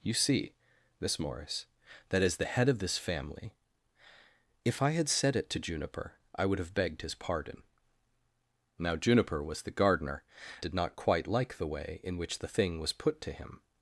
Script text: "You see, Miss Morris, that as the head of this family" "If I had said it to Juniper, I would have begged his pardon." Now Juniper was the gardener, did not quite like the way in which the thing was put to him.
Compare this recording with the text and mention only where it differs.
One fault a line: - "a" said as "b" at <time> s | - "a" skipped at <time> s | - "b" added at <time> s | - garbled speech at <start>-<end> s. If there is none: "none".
none